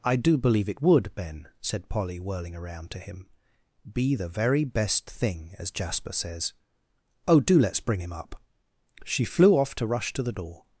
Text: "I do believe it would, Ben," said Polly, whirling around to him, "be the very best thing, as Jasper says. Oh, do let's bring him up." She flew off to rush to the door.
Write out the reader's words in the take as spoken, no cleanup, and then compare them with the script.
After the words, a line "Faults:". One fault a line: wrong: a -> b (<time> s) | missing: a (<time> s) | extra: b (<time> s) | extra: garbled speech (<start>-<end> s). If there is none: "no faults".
"I do believe it would, Ben," said Polly, whirling around to him, "be the very best thing, as Jasper says. Oh, do let's bring him up." She flew off to rush to the door.
Faults:
no faults